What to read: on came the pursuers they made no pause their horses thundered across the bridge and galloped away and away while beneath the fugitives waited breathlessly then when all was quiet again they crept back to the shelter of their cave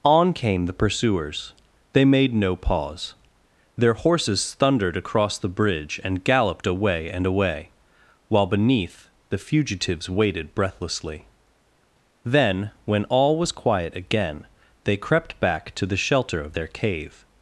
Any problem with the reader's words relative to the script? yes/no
no